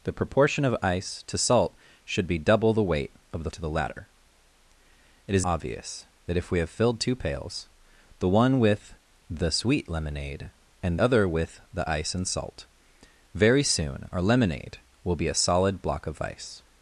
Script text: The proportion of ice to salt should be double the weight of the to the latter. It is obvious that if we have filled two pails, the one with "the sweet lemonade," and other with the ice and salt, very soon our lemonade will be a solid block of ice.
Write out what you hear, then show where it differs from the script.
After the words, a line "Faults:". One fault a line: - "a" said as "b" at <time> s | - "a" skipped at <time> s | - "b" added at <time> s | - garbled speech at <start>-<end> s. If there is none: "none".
The proportion of ice to salt should be double the weight of the to the latter. It is obvious that if we have filled two pails, the one with "the sweet lemonade," and other with the ice and salt, very soon our lemonade will be a solid block of ice.
Faults:
none